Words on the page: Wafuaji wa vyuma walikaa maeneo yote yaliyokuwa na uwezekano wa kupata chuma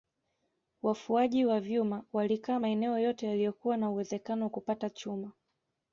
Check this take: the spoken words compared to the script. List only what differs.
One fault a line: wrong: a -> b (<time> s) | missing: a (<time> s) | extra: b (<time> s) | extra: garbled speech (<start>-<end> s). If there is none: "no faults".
no faults